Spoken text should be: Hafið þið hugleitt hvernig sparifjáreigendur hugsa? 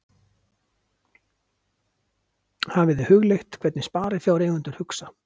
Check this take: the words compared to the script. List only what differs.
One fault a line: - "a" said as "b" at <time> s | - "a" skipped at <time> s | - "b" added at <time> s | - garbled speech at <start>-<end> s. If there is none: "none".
none